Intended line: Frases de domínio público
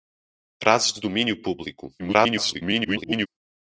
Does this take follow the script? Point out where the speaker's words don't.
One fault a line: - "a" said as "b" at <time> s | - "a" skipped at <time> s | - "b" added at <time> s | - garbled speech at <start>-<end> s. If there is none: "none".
- garbled speech at 2.0-3.3 s